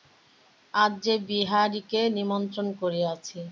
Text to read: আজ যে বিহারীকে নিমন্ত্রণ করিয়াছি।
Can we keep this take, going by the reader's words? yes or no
yes